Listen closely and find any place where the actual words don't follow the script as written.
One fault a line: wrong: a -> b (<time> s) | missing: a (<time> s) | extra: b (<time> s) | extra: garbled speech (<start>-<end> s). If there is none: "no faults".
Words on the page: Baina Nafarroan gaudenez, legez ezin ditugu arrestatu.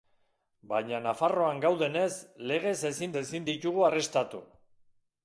extra: ezin (3.2 s)